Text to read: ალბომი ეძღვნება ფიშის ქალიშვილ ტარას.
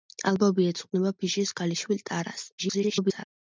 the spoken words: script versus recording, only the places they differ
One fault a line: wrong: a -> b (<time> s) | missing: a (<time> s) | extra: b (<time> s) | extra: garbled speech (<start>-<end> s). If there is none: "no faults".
extra: garbled speech (2.6-3.2 s)